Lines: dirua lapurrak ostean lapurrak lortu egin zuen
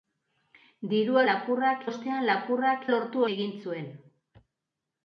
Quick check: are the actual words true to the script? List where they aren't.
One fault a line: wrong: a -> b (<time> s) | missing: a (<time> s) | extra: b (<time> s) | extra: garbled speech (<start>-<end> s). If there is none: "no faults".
no faults